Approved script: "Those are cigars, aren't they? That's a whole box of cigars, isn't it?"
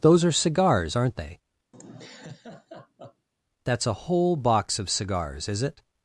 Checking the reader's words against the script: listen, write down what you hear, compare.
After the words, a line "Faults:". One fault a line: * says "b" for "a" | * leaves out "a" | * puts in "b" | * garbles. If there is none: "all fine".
"Those are cigars, aren't they? That's a whole box of cigars, is it?"
Faults:
* says "is" for "isn't"